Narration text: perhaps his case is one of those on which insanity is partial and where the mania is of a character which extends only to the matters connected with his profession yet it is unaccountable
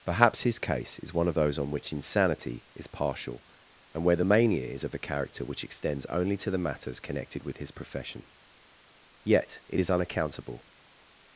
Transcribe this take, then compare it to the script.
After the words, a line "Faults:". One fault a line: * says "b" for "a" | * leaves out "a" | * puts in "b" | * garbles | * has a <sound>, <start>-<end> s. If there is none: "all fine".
perhaps his case is one of those on which insanity is partial and where the mania is of a character which extends only to the matters connected with his profession yet it is unaccountable
Faults:
all fine